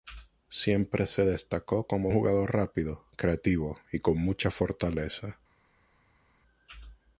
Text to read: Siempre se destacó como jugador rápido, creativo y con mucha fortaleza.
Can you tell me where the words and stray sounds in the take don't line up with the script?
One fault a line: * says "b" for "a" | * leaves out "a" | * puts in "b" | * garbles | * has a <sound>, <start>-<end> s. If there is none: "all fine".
all fine